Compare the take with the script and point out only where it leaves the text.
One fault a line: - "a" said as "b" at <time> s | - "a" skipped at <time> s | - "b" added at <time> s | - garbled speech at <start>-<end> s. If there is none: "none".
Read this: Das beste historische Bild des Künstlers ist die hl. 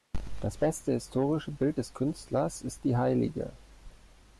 none